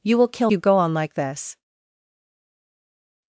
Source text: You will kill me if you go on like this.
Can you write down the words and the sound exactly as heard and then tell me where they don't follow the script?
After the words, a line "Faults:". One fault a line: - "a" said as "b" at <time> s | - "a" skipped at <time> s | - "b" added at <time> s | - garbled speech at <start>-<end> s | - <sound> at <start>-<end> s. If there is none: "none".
You will kill you go on like this.
Faults:
- "me if" skipped at 0.5 s